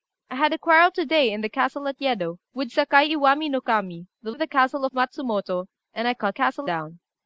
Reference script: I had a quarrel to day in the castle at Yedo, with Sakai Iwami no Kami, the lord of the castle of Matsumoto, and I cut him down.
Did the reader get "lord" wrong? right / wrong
wrong